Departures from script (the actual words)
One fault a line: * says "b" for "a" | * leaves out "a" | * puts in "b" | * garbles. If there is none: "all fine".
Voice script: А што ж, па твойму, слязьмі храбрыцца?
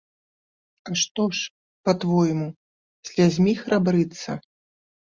all fine